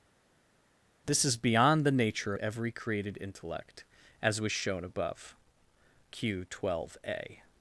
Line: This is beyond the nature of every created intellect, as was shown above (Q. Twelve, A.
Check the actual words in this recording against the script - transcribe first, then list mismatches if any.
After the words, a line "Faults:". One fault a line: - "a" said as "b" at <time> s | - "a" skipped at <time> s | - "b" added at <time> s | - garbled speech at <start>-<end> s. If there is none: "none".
This is beyond the nature every created intellect, as was shown above (Q. Twelve, A.
Faults:
- "of" skipped at 2.3 s